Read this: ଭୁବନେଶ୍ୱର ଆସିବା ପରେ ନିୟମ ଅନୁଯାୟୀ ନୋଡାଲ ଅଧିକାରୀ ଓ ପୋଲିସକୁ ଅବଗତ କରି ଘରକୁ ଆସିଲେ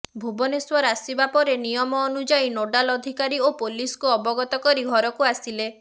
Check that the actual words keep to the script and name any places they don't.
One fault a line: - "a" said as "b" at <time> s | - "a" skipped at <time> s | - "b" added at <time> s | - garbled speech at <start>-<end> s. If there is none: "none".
none